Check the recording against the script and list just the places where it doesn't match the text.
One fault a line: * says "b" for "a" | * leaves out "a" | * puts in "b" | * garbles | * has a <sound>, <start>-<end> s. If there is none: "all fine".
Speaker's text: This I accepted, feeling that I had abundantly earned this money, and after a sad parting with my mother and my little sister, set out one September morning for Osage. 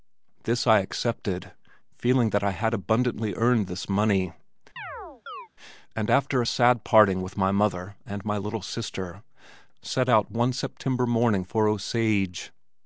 * has a chirp, 4.8-5.5 s